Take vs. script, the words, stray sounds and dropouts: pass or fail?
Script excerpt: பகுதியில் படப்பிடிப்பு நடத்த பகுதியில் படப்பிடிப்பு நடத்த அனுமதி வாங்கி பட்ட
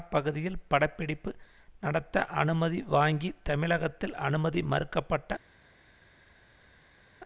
fail